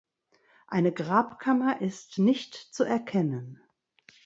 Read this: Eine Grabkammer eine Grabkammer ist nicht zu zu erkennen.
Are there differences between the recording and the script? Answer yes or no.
yes